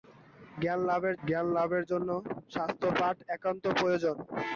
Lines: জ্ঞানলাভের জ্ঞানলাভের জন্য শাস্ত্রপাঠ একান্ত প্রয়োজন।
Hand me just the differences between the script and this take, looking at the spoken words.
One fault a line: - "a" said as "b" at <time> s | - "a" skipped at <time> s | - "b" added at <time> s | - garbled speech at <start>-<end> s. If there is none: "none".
none